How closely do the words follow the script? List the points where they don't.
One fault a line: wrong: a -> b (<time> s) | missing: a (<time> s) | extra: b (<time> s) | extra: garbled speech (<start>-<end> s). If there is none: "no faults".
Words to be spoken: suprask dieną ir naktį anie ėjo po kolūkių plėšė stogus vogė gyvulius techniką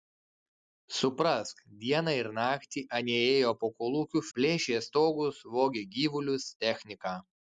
no faults